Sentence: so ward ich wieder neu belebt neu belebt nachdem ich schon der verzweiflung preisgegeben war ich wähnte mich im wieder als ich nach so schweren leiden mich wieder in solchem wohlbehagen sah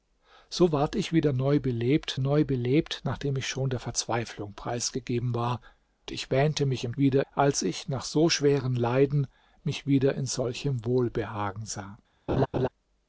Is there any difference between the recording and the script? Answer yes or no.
no